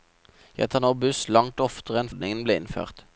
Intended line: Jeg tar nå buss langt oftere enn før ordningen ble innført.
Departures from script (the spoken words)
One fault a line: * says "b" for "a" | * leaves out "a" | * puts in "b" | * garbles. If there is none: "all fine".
* leaves out "før"